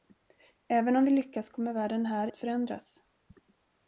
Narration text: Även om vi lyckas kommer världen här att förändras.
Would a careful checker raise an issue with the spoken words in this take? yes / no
no